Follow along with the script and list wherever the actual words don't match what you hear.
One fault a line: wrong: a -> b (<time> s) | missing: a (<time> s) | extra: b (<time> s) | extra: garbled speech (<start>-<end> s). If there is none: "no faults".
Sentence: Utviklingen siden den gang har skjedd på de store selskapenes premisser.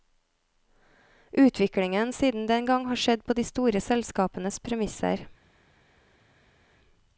no faults